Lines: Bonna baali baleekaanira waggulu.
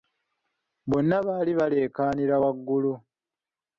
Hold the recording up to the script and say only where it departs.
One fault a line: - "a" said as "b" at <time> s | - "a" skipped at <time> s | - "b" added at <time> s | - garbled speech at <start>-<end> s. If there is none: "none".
none